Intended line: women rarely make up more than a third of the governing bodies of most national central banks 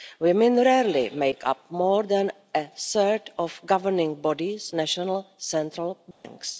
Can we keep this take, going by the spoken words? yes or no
no